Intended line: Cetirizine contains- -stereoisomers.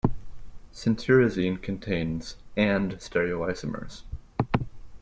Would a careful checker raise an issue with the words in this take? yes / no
yes